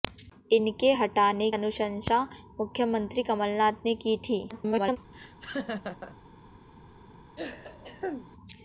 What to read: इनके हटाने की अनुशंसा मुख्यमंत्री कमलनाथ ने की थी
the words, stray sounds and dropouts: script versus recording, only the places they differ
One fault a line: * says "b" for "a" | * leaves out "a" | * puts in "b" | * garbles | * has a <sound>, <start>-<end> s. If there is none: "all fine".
* leaves out "की"
* garbles
* has a laugh, 5.1-6.2 s
* has a throat clearing, 7.4-8.3 s